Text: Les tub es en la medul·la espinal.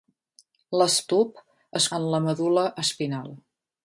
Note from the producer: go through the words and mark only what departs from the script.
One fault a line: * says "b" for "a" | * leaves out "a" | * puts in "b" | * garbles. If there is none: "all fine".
all fine